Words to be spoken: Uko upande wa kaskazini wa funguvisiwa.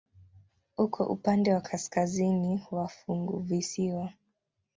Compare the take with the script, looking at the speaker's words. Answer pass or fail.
pass